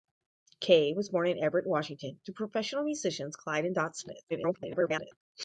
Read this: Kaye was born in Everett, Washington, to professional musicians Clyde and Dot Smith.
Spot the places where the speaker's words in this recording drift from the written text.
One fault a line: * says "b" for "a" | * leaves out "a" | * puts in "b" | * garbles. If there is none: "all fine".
* garbles